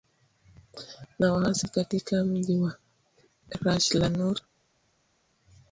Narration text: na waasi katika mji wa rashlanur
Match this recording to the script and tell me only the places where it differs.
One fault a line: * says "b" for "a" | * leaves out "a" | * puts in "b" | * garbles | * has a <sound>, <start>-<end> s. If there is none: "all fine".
all fine